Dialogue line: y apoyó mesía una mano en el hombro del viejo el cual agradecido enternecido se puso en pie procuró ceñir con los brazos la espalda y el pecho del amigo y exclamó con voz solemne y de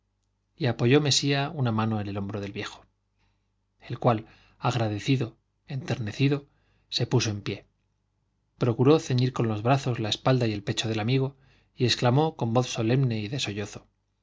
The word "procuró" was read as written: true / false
true